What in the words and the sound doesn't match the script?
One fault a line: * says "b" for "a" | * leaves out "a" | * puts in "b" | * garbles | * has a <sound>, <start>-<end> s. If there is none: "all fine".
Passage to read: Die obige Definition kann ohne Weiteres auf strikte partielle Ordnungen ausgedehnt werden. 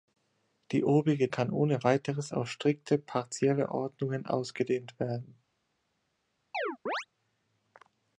* leaves out "Definition"
* has a chirp, 6.5-7.1 s